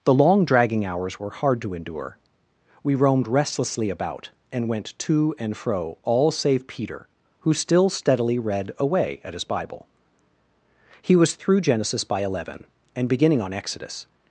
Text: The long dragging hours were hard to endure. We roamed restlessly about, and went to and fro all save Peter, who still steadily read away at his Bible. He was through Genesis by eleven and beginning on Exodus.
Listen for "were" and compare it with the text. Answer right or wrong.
right